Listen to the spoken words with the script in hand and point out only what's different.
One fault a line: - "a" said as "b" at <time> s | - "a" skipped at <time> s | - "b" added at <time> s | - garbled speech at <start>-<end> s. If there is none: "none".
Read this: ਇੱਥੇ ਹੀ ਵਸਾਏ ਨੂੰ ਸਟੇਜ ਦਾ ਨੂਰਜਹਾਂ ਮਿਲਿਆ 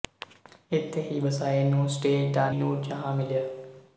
none